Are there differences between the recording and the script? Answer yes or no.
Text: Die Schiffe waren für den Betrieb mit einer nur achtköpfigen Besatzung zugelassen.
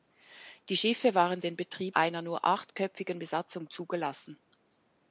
yes